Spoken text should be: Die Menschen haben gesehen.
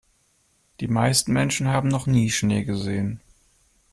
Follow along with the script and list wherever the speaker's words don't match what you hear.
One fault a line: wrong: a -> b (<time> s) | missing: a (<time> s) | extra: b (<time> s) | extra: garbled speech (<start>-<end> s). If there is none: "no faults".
extra: meisten (0.9 s)
extra: noch nie Schnee (1.9 s)